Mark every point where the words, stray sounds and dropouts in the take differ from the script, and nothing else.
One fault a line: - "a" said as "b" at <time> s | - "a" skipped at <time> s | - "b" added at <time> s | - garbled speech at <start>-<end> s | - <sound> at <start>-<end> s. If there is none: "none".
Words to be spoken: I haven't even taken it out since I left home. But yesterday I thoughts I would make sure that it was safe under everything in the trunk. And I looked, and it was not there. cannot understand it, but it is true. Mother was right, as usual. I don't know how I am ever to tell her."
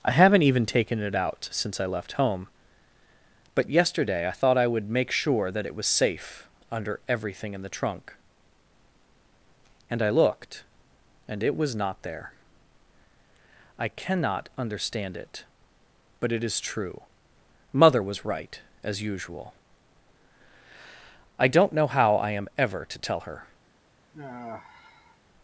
- "thoughts" said as "thought" at 4.3 s
- "I" added at 13.8 s
- sigh at 24.1-25.2 s